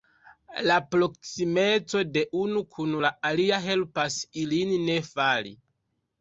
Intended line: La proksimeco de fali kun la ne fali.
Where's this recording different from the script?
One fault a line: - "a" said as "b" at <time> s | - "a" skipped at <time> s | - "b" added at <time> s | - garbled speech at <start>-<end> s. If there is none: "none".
- "fali" said as "unu" at 2.5 s
- "alia helpas ilin" added at 3.3 s